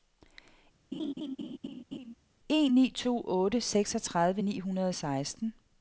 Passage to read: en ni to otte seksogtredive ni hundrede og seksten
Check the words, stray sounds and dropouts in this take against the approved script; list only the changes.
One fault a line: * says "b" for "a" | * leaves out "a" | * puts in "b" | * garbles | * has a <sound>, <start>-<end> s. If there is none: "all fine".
* has a laugh, 0.9-2.1 s